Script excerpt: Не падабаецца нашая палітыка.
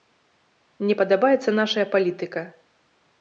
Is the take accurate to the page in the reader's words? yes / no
yes